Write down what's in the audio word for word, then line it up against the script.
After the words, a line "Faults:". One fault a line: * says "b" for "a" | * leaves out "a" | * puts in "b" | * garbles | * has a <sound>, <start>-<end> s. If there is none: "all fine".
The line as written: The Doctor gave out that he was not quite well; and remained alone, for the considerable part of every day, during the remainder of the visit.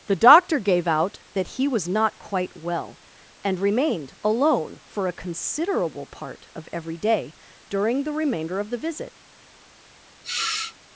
The Doctor gave out that he was not quite well; and remained alone, for a considerable part of every day, during the remainder of the visit.
Faults:
* says "a" for "the"
* has a sniff, 10.2-10.7 s